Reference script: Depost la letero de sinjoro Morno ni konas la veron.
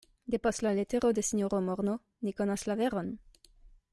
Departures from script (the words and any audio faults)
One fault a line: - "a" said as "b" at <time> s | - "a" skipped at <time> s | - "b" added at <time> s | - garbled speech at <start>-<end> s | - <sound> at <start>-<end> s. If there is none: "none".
none